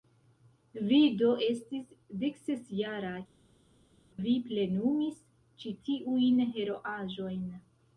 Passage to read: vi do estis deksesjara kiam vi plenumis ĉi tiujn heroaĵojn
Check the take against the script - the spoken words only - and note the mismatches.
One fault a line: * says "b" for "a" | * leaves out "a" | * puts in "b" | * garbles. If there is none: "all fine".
* leaves out "kiam"